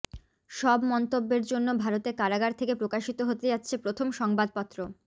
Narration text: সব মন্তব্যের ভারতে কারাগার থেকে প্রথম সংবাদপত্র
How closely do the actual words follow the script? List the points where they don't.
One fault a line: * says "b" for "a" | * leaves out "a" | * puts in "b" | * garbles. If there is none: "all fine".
* puts in "জন্য"
* puts in "প্রকাশিত হতে যাচ্ছে"